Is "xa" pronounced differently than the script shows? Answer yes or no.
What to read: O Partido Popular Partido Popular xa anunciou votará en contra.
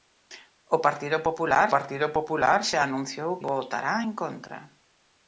no